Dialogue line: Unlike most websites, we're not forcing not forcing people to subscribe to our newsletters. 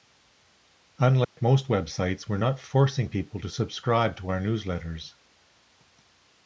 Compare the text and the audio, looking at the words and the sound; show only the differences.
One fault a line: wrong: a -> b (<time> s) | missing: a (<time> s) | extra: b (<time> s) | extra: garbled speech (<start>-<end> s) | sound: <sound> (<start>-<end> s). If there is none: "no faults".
sound: dropout (1.2-1.4 s)
missing: not forcing (3.1 s)